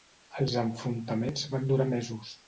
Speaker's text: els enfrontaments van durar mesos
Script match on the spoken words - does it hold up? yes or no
yes